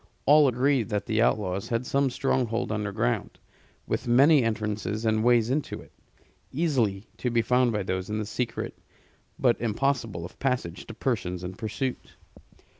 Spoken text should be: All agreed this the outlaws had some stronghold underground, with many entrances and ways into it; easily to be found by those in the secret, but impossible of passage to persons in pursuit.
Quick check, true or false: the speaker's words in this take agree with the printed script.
false